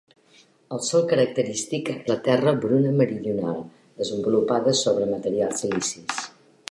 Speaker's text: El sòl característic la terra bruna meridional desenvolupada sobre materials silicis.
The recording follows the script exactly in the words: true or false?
true